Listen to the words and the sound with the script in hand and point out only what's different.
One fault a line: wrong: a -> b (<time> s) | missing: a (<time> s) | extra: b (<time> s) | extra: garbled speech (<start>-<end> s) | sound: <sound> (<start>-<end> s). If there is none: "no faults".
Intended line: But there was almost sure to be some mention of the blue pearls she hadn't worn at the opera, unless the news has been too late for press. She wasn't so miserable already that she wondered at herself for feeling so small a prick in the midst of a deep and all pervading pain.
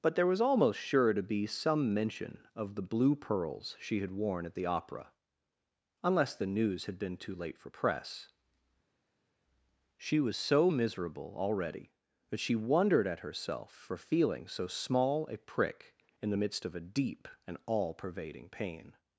wrong: hadn't -> had (4.0 s)
wrong: has -> had (6.8 s)
wrong: wasn't -> was (10.2 s)